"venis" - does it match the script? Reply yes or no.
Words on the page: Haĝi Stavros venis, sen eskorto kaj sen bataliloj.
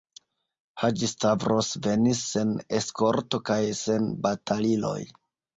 yes